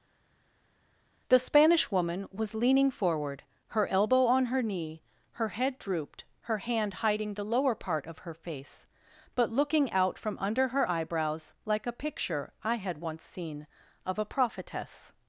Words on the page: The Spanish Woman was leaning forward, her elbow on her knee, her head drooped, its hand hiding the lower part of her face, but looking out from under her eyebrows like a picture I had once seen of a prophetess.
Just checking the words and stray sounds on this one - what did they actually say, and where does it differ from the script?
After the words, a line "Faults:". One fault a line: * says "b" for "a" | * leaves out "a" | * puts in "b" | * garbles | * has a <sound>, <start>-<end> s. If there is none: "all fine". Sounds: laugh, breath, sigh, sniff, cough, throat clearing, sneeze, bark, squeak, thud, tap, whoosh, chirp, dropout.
The Spanish Woman was leaning forward, her elbow on her knee, her head drooped, her hand hiding the lower part of her face, but looking out from under her eyebrows like a picture I had once seen of a prophetess.
Faults:
* says "her" for "its"